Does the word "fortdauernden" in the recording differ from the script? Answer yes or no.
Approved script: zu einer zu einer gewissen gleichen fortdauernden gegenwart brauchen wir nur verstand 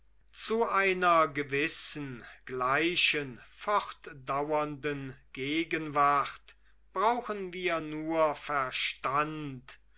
no